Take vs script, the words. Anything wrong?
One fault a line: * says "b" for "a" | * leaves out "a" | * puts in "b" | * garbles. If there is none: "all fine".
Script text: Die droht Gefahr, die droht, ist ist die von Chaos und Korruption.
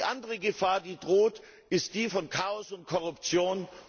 * says "andere" for "droht"
* leaves out "ist"